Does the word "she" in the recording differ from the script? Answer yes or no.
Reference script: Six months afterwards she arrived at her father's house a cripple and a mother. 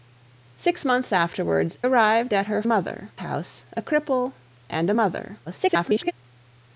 yes